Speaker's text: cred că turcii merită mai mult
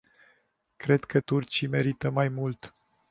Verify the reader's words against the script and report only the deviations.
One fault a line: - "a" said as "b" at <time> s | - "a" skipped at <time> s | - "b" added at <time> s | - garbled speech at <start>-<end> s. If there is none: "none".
none